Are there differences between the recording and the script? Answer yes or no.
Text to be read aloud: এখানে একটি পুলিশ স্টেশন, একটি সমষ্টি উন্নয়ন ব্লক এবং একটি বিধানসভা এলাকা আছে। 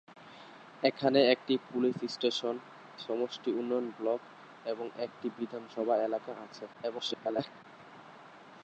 yes